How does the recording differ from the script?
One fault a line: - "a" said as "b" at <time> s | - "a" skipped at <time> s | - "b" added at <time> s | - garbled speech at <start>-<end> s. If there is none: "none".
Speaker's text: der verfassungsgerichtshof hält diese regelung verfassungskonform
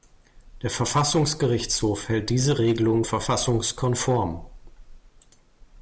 none